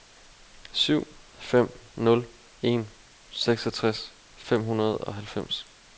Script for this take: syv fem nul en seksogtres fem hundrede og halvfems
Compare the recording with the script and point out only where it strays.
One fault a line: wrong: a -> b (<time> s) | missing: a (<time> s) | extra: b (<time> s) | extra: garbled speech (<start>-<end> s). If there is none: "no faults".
no faults